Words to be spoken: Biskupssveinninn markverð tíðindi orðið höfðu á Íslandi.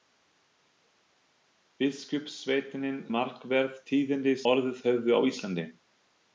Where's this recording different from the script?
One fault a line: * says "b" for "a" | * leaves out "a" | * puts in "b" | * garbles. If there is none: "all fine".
all fine